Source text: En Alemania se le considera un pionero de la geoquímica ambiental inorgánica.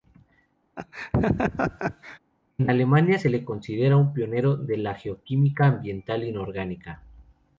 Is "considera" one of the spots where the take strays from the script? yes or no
no